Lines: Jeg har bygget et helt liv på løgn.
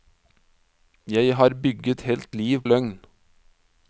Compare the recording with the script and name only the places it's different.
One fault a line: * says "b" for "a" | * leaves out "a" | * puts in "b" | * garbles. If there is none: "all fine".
* leaves out "et"
* leaves out "på"